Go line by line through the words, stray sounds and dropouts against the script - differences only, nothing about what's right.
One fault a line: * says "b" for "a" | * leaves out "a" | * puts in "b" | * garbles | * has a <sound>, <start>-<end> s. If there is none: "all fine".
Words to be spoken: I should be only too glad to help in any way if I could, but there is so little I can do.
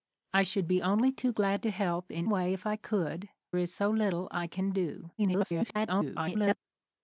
* leaves out "any"
* leaves out "but there"
* garbles